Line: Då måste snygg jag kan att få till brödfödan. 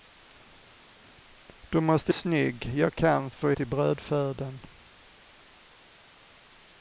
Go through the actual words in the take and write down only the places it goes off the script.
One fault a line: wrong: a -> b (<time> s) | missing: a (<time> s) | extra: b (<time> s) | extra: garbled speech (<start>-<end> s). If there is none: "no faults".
no faults